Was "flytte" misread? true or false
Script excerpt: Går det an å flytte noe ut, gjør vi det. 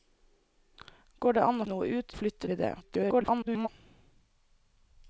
true